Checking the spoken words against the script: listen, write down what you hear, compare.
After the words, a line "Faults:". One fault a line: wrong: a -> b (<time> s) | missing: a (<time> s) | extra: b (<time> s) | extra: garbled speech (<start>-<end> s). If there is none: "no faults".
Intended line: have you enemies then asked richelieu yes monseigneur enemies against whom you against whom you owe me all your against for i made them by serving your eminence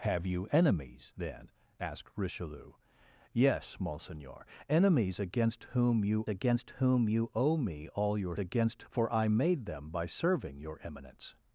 have you enemies then asked richelieu yes monseigneur enemies against whom you against whom you owe me all your against for i made them by serving your eminence
Faults:
no faults